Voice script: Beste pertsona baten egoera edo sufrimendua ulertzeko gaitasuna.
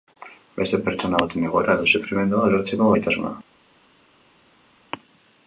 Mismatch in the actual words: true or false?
false